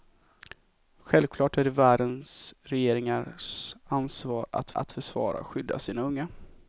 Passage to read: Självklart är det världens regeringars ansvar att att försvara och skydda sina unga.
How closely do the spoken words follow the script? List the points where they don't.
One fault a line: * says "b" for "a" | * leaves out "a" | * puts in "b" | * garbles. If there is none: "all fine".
all fine